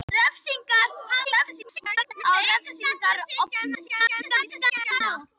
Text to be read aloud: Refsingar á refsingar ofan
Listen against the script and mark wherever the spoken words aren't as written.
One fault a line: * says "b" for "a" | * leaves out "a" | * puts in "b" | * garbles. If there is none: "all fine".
* garbles
* garbles